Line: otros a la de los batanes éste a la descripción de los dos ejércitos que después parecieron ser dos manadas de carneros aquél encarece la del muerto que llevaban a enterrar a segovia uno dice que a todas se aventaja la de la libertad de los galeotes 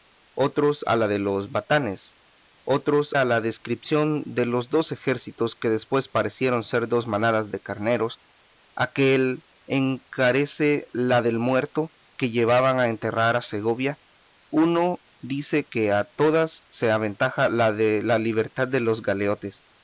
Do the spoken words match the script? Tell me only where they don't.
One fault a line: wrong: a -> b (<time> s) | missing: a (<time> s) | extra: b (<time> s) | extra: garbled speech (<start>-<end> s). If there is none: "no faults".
wrong: éste -> otros (2.6 s)